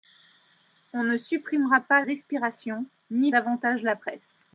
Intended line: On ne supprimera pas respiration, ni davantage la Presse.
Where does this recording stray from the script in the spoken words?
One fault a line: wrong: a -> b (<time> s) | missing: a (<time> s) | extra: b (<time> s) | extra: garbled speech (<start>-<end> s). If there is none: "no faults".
no faults